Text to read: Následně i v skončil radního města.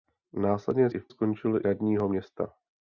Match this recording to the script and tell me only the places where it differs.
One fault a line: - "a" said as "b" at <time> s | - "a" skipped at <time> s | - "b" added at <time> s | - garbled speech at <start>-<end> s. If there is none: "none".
none